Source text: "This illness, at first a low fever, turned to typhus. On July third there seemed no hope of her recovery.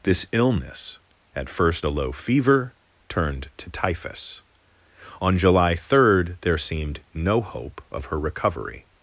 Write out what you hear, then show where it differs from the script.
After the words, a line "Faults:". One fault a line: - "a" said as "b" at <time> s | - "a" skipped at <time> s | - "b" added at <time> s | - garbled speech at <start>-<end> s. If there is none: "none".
"This illness, at first a low fever, turned to typhus. On July third there seemed no hope of her recovery.
Faults:
none